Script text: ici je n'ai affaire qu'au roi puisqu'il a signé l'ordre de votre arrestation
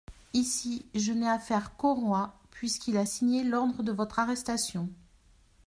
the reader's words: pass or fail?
pass